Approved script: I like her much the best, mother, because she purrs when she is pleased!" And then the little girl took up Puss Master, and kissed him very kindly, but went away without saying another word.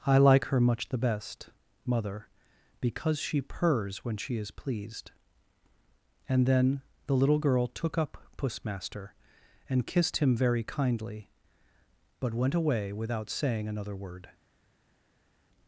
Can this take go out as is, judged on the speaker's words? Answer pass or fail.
pass